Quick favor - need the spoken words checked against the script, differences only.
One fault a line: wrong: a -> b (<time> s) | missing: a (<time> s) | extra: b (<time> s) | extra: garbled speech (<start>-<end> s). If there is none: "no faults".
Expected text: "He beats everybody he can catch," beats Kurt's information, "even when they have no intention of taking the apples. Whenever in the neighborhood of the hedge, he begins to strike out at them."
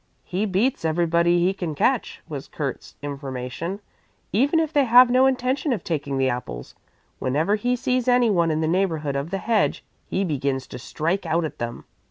wrong: beats -> was (2.3 s)
wrong: when -> if (4.6 s)
extra: he sees anyone (7.5 s)